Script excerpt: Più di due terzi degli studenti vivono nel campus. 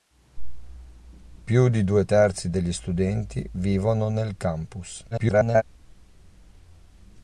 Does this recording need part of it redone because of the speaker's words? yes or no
yes